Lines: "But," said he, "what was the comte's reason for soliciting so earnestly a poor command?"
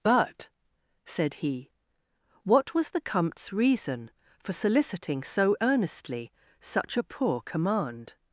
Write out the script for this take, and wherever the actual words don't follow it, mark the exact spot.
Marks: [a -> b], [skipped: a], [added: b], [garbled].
"But," said he, "what was the comte's reason for soliciting so earnestly [added: such] a poor command?"